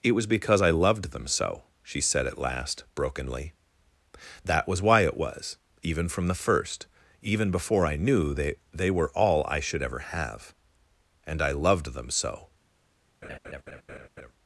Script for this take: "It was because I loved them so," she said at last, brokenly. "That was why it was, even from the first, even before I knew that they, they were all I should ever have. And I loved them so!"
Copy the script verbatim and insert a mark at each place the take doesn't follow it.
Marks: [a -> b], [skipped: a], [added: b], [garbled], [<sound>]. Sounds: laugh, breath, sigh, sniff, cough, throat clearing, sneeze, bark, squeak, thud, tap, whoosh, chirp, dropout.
"It was because I loved them so," she said at last, brokenly. "That was why it was, even from the first, even before I knew [skipped: that] they, they were all I should ever have. And I loved them so!" [laugh]